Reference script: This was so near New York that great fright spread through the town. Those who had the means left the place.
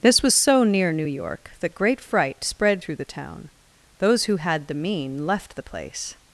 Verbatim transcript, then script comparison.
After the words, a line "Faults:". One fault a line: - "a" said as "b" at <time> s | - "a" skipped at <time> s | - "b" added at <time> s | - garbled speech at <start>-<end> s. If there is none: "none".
This was so near New York that great fright spread through the town. Those who had the mean left the place.
Faults:
- "means" said as "mean" at 4.7 s